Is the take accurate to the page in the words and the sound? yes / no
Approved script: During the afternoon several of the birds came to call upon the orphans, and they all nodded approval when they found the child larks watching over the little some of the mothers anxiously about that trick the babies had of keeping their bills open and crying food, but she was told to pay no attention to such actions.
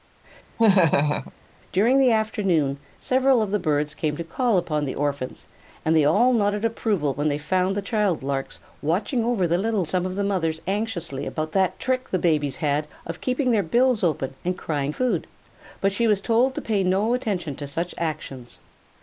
no